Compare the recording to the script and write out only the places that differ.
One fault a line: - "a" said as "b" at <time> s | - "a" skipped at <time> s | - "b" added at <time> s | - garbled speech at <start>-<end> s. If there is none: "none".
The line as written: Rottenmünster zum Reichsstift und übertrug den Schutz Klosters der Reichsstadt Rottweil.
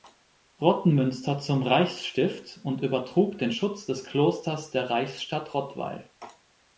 - "des" added at 3.8 s